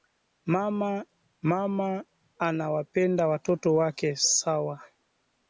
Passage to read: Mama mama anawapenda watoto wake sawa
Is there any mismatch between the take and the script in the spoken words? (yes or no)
no